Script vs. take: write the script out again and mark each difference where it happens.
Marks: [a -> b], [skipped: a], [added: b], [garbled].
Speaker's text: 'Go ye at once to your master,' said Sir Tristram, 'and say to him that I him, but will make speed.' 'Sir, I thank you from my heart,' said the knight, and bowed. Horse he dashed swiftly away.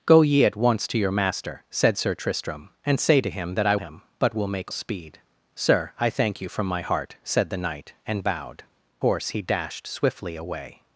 'Go ye at once to your master,' said Sir Tristram, 'and say to him that I him, but will make speed.' 'Sir, I thank you from my heart,' said the knight, and bowed. Horse he dashed swiftly away.